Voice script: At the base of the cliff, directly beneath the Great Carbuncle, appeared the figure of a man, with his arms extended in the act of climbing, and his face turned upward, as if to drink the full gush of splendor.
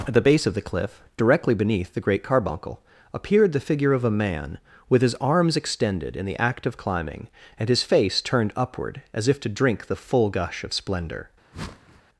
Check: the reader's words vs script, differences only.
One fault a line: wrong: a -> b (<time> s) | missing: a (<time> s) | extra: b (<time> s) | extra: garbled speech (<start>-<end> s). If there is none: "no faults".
no faults